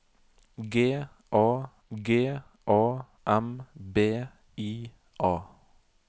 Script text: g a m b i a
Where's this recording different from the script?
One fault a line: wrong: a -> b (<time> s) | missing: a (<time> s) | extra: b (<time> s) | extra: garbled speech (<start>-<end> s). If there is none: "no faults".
extra: g a (1.9 s)